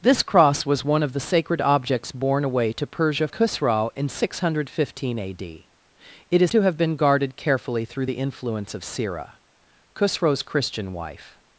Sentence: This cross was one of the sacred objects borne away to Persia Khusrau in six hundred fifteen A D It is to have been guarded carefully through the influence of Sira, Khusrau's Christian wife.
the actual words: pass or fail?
pass